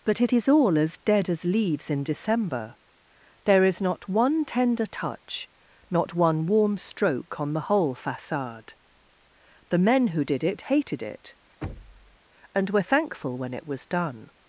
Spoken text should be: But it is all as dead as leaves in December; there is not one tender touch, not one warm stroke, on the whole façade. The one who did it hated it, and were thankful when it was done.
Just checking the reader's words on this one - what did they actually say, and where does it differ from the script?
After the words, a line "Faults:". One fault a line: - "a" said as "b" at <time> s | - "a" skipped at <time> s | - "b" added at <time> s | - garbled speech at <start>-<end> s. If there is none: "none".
But it is all as dead as leaves in December; there is not one tender touch, not one warm stroke, on the whole façade. The men who did it hated it, and were thankful when it was done.
Faults:
- "one" said as "men" at 9.8 s